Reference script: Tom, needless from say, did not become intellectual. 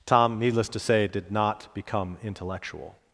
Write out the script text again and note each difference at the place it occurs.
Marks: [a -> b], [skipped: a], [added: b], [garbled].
Tom, needless [from -> to] say, did not become intellectual.